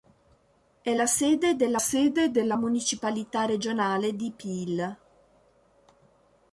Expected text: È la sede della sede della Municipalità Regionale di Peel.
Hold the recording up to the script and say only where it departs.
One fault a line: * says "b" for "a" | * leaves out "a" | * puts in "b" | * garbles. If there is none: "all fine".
all fine